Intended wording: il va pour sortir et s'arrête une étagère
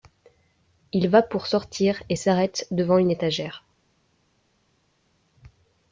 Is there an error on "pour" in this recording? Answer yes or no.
no